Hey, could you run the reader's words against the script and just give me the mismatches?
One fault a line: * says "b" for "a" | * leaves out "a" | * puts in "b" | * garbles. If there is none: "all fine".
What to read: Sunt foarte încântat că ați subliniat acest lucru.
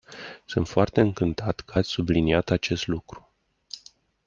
all fine